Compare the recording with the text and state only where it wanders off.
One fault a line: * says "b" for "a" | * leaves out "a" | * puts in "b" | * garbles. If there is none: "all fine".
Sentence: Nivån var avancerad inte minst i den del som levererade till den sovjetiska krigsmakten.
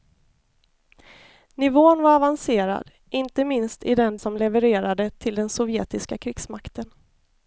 * leaves out "del"